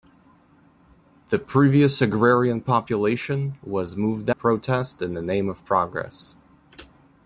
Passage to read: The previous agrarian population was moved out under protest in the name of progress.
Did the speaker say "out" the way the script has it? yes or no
no